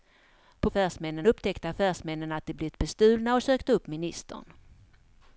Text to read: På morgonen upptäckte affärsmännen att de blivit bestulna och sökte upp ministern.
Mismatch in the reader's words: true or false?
true